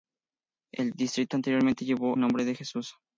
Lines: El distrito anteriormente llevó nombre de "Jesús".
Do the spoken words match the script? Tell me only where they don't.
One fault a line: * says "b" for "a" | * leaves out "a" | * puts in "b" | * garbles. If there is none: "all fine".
all fine